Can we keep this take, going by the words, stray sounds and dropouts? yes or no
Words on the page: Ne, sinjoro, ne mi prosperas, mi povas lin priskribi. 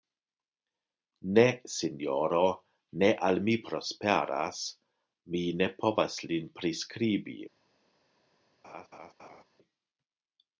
no